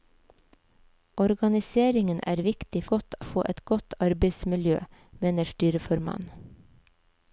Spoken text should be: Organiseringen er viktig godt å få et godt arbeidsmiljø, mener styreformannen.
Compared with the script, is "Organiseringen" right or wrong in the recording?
right